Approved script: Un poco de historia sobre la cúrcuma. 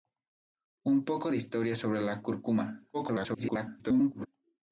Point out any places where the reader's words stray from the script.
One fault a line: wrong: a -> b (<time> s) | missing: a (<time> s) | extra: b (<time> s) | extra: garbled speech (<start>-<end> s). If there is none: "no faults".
extra: garbled speech (2.9-4.3 s)